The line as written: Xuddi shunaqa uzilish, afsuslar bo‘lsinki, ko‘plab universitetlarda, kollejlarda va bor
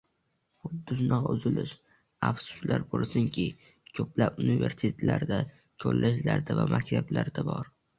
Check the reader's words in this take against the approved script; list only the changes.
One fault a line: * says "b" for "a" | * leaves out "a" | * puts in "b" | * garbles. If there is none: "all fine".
* puts in "maktablarda"